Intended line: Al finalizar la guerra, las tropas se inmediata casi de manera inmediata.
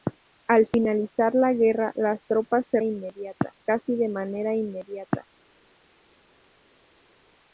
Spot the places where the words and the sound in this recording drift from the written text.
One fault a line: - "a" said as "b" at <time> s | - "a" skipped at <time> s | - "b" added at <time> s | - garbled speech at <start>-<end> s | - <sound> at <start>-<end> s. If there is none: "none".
none